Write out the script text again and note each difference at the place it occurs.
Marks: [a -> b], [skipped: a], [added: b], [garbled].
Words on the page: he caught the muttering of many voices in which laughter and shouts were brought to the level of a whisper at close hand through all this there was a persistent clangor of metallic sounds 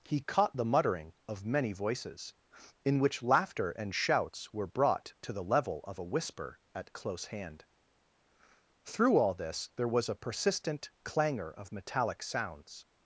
he caught the muttering of many voices in which laughter and shouts were brought to the level of a whisper at close hand through all this there was a persistent clangor of metallic sounds